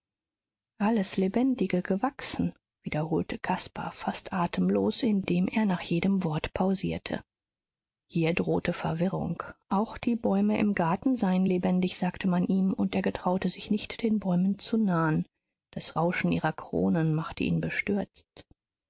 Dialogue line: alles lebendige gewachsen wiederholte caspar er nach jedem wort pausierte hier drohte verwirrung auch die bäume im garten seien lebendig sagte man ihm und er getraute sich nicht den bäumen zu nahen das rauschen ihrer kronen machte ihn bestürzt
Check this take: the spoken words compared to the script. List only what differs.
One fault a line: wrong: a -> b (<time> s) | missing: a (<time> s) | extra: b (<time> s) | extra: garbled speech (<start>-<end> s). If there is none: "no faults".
extra: fast atemlos indem (3.9 s)